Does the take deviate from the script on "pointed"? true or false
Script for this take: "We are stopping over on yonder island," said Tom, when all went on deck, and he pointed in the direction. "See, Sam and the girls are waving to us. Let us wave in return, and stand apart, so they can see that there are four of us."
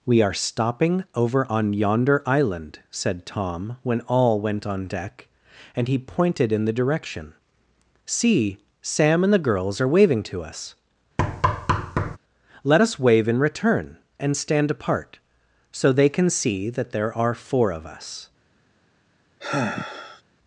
false